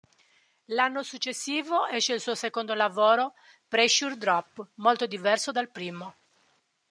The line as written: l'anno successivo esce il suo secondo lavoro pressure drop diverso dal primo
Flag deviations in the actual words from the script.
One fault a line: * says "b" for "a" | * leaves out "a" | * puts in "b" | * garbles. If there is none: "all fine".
* puts in "molto"